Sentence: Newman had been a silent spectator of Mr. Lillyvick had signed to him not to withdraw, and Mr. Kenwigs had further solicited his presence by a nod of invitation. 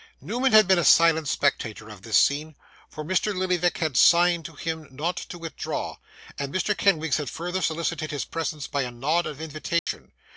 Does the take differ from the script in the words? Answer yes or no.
yes